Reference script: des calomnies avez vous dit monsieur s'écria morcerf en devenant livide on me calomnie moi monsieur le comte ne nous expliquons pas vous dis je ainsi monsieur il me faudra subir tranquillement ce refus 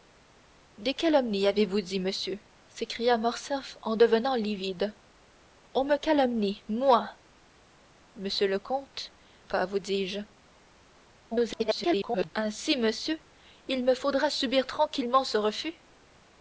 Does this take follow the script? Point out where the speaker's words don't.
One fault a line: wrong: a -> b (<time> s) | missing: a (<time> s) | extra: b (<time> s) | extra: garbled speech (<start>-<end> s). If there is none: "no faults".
missing: ne nous expliquons (9.1 s)
extra: garbled speech (11.3-12.3 s)